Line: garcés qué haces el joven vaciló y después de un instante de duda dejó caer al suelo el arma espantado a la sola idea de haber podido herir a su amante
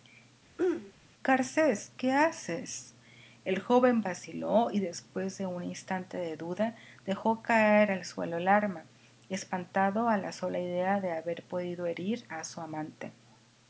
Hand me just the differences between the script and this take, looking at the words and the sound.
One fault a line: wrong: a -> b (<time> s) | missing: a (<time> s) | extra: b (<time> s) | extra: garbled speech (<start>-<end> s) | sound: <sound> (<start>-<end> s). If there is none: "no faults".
sound: throat clearing (0.6-0.9 s)